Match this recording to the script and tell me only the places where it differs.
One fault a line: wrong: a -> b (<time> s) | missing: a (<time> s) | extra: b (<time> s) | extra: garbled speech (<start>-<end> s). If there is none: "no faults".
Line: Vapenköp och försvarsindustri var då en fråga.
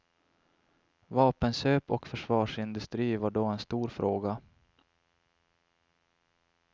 extra: stor (3.6 s)